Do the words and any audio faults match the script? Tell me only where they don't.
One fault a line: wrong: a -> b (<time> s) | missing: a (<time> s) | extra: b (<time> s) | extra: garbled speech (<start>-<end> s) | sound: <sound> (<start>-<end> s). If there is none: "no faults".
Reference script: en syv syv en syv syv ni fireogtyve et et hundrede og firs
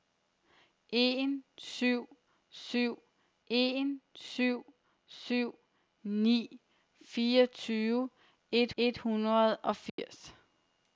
sound: dropout (9.9-10.0 s)